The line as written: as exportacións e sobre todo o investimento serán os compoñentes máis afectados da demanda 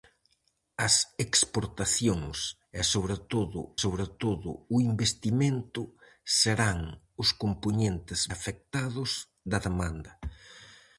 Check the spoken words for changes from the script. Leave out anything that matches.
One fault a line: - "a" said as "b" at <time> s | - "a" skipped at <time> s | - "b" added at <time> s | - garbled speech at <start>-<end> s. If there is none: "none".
- "sobre todo" added at 3.8 s
- "máis" skipped at 8.2 s